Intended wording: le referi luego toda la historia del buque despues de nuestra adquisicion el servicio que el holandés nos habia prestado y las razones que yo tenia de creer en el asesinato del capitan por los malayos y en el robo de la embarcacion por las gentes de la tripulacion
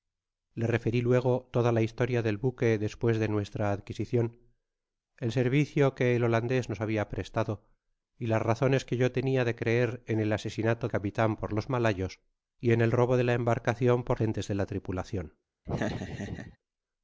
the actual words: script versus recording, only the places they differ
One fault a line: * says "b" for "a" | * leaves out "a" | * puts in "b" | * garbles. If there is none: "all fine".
* leaves out "del"
* leaves out "las"